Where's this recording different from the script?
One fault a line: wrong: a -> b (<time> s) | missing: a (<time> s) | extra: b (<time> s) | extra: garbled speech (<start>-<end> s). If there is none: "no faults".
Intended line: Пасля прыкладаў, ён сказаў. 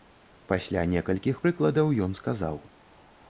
extra: некалькіх (0.9 s)